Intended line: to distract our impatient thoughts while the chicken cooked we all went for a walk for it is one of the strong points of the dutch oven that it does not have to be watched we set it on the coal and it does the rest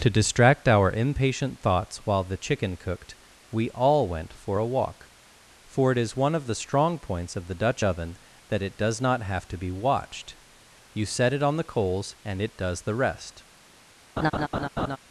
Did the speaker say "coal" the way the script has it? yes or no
no